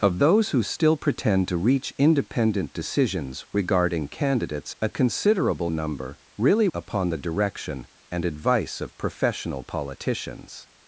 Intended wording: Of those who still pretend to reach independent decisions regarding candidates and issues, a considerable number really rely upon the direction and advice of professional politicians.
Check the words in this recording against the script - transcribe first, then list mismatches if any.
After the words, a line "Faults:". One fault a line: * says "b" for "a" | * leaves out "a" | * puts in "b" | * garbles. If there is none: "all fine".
Of those who still pretend to reach independent decisions regarding candidates a considerable number really upon the direction and advice of professional politicians.
Faults:
* leaves out "and issues"
* leaves out "rely"